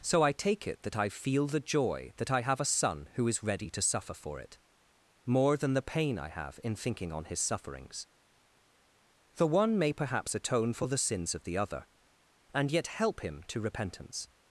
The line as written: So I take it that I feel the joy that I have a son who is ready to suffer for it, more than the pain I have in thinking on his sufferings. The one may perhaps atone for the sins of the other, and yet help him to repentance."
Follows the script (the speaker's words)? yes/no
yes